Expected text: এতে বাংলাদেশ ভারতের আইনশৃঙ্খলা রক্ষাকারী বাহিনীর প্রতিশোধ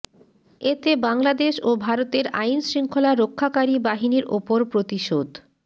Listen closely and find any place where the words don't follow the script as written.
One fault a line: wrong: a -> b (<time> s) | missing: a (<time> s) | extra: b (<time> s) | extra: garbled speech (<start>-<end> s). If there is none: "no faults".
extra: ও (1.6 s)
extra: ওপর (4.4 s)